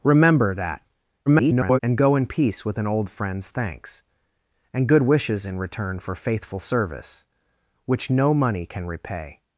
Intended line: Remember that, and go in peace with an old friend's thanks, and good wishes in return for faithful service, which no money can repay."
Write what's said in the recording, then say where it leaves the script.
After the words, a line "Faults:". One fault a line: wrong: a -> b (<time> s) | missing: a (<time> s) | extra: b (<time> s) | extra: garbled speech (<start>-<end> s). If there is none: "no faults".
Remember that, [garbled] and go in peace with an old friend's thanks, and good wishes in return for faithful service, which no money can repay."
Faults:
extra: garbled speech (1.3-1.8 s)